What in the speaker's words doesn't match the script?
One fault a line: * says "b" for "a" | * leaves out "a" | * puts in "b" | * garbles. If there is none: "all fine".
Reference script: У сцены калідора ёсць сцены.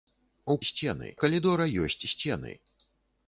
all fine